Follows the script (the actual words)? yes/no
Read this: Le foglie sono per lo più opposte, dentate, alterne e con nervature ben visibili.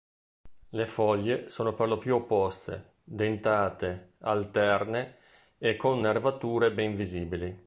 yes